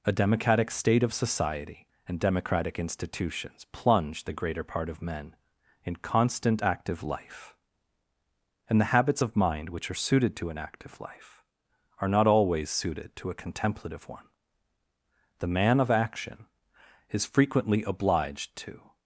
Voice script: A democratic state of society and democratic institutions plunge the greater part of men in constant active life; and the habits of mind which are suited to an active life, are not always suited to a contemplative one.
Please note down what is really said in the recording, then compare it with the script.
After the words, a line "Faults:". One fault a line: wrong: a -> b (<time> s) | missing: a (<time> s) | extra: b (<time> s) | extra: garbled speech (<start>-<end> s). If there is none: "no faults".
A democratic state of society and democratic institutions plunge the greater part of men in constant active life; and the habits of mind which are suited to an active life, are not always suited to a contemplative one. The man of action is frequently obliged to
Faults:
extra: The man of action is frequently obliged to (15.4 s)